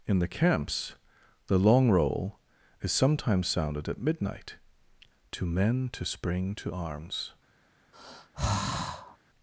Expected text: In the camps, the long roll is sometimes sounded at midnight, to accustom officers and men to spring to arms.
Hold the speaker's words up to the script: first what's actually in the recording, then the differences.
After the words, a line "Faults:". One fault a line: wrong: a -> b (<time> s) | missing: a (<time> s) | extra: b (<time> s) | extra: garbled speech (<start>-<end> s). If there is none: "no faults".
In the camps, the long roll is sometimes sounded at midnight, to men to spring to arms.
Faults:
missing: accustom officers and (5.5 s)